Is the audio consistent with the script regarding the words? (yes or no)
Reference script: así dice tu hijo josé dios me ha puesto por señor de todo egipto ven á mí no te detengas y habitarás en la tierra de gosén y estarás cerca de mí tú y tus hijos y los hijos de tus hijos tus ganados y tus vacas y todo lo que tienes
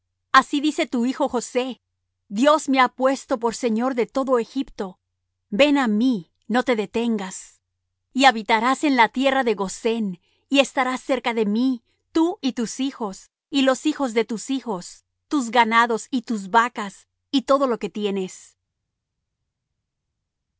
yes